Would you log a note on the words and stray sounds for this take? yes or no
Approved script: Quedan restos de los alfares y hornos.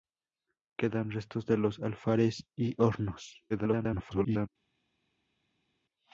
yes